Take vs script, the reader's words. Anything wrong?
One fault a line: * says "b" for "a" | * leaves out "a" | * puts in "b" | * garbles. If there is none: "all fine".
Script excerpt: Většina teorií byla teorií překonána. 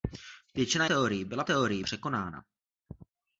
all fine